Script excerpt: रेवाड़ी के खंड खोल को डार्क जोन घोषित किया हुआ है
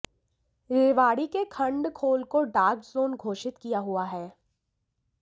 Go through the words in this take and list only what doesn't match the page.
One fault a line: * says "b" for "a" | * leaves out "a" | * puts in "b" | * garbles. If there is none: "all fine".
all fine